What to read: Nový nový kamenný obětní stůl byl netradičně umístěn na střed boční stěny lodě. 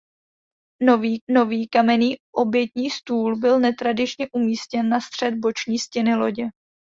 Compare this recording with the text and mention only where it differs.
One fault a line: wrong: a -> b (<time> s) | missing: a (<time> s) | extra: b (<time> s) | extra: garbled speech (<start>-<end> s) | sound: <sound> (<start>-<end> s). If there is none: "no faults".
no faults